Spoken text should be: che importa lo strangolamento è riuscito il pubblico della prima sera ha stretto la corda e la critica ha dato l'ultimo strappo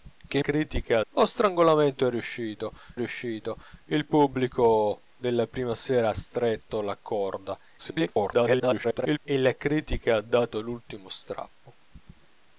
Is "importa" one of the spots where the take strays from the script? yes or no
yes